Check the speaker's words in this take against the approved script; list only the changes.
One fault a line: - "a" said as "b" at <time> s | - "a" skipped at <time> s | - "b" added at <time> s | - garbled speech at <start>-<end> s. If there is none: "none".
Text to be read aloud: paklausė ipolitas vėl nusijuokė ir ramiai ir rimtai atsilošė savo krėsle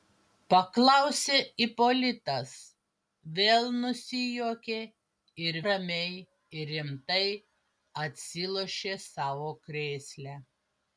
none